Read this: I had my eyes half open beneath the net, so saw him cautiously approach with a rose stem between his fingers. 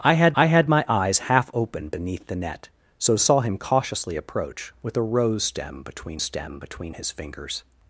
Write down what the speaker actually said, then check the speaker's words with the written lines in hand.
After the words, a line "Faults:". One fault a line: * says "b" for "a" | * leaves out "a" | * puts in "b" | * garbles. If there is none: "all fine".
I had I had my eyes half open beneath the net, so saw him cautiously approach with a rose stem between stem between his fingers.
Faults:
* puts in "I had"
* puts in "stem between"